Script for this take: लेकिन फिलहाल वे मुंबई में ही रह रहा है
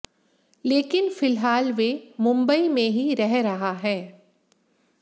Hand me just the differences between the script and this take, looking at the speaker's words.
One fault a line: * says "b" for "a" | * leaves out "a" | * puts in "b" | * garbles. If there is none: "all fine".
all fine